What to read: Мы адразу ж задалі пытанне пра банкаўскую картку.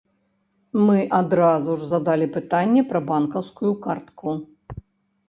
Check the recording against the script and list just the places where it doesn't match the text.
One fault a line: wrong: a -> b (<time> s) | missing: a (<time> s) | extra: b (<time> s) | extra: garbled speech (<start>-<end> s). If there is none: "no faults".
no faults